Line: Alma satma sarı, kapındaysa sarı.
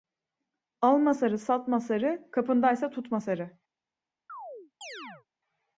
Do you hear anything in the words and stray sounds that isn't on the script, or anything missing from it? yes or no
yes